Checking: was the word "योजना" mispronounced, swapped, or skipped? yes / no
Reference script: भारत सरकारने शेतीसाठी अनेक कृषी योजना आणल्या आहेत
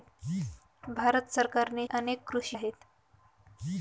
yes